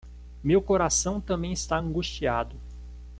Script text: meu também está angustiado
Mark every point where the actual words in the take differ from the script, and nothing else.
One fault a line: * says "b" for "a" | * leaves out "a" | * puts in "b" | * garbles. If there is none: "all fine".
* puts in "coração"